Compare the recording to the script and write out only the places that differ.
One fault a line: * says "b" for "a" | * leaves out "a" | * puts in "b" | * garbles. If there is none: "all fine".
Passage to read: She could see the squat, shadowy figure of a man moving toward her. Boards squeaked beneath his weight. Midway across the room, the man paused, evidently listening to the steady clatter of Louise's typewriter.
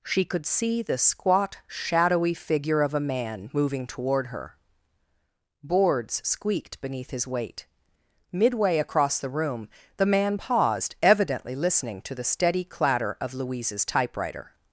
all fine